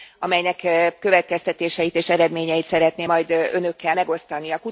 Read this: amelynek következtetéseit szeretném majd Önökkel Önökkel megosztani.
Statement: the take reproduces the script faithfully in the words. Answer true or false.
false